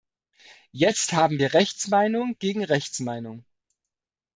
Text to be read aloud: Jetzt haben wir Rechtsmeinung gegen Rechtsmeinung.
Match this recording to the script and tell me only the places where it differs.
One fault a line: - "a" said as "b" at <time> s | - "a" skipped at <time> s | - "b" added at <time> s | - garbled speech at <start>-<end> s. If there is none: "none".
none